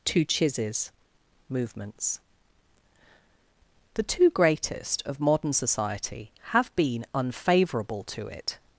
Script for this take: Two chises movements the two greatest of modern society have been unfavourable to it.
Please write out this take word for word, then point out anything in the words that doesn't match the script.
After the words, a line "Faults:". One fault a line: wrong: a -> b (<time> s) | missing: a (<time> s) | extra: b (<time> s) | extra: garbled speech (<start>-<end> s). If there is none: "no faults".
Two chises movements the two greatest of modern society have been unfavourable to it.
Faults:
no faults